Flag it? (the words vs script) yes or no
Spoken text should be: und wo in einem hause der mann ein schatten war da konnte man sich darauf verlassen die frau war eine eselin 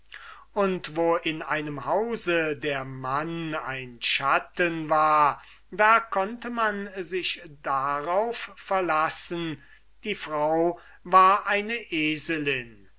no